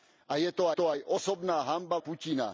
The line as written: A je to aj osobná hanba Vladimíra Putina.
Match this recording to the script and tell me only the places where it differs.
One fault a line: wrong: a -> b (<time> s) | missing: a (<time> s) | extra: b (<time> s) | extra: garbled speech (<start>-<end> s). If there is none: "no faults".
extra: to (0.7 s)
missing: Vladimíra (1.9 s)